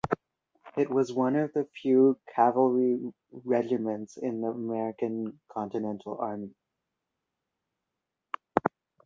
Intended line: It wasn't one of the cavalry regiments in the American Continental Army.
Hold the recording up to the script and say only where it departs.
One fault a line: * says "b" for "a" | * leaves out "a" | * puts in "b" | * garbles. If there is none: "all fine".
* says "was" for "wasn't"
* puts in "few"